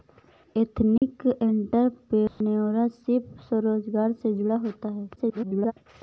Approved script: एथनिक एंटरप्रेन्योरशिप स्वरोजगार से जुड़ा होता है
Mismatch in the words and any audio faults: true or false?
true